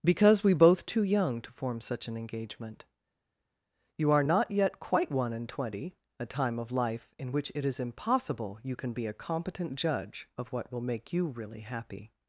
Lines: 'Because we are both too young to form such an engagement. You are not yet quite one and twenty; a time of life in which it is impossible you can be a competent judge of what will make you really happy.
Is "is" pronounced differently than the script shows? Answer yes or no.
no